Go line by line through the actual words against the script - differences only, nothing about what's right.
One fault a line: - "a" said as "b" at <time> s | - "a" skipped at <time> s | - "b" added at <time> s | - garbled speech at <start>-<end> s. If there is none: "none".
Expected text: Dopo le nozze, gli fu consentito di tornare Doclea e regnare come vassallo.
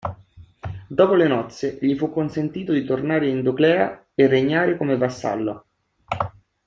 - "in" added at 3.3 s